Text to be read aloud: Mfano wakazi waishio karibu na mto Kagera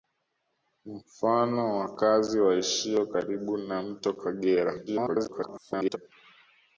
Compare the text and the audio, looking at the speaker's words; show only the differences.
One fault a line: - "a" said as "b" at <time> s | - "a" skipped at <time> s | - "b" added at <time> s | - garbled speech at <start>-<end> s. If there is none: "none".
- garbled speech at 4.9-6.0 s